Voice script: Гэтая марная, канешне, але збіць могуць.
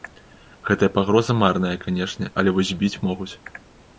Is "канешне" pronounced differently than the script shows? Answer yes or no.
no